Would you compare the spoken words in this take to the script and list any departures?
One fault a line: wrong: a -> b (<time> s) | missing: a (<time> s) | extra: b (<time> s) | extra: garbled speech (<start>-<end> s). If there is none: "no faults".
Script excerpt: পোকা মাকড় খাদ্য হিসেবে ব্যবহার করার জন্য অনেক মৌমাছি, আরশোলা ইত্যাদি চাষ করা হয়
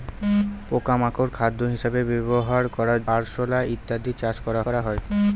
missing: জন্য অনেক মৌমাছি (3.0 s)
extra: করা (4.7 s)